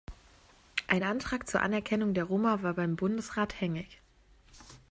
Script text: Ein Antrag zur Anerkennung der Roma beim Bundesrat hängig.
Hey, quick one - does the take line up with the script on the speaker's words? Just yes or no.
no